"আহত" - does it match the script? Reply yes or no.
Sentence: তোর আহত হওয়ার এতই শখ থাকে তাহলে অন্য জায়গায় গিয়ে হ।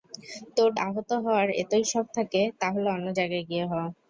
yes